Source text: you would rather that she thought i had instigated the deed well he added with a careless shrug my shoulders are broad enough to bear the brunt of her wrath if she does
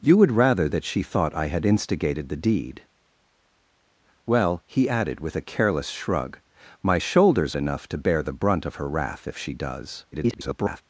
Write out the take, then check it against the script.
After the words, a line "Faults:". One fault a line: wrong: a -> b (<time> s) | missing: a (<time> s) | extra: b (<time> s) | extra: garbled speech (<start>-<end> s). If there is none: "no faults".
you would rather that she thought i had instigated the deed well he added with a careless shrug my shoulders enough to bear the brunt of her wrath if she does [garbled]
Faults:
missing: are broad (7.5 s)
extra: garbled speech (10.1-10.8 s)